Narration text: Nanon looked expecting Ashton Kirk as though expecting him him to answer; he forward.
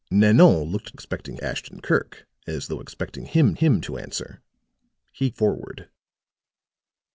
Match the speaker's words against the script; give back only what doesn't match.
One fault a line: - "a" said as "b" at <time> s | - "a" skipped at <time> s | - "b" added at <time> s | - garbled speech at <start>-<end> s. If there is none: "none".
none